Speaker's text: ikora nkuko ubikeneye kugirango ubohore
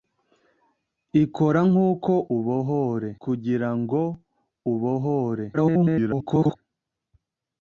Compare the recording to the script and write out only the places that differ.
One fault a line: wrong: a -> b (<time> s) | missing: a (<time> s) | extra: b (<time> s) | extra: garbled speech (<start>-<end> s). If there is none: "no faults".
wrong: ubikeneye -> ubohore (2.4 s)
extra: garbled speech (5.5-6.6 s)